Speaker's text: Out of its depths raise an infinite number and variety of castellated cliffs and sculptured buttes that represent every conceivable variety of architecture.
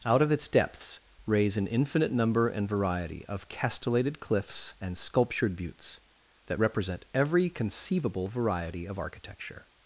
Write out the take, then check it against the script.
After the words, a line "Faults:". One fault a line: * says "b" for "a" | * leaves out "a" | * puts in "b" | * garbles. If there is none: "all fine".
Out of its depths raise an infinite number and variety of castellated cliffs and sculptured buttes that represent every conceivable variety of architecture.
Faults:
all fine